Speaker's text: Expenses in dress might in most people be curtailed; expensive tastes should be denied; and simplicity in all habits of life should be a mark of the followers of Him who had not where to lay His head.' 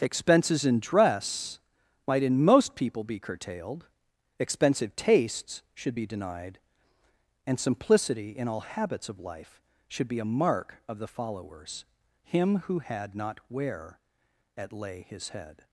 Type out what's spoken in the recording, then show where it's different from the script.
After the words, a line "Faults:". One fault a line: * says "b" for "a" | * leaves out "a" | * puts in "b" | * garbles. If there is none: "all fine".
Expenses in dress might in most people be curtailed; expensive tastes should be denied; and simplicity in all habits of life should be a mark of the followers Him who had not where at lay His head.'
Faults:
* leaves out "of"
* says "at" for "to"